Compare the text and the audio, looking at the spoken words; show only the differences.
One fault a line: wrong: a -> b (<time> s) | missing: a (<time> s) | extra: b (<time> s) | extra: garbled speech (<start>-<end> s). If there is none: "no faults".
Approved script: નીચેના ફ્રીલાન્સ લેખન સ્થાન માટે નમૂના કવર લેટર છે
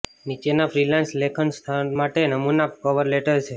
no faults